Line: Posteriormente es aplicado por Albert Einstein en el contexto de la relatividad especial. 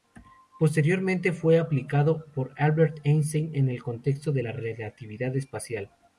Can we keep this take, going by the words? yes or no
no